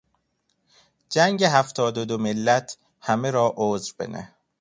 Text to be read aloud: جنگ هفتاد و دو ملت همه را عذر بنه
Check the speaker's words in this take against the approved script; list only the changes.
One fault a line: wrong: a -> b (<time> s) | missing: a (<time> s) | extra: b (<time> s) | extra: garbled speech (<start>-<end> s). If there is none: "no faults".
no faults